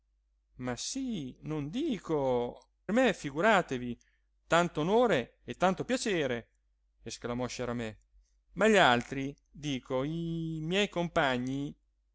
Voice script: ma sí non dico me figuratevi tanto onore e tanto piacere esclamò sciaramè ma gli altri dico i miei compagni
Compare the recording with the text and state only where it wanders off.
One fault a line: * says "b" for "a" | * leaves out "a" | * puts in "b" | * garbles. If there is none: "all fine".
all fine